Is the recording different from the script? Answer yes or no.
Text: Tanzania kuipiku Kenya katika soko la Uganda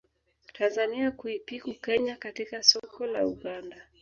no